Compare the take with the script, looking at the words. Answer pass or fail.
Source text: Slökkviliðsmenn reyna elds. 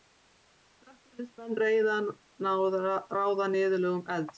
fail